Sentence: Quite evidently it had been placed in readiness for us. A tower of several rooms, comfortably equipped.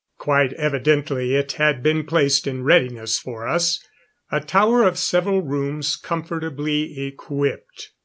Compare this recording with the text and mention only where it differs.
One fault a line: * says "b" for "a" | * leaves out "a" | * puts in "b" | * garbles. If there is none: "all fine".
all fine